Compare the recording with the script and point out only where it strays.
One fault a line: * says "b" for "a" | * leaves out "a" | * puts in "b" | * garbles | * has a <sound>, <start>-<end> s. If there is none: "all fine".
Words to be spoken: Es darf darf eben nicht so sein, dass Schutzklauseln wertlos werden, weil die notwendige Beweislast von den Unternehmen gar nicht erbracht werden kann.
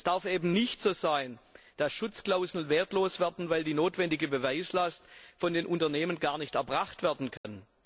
* leaves out "darf"
* has a dropout, 7.4-7.4 s